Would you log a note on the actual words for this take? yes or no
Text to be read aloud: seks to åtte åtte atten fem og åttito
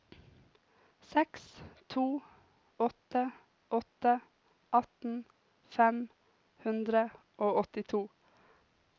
yes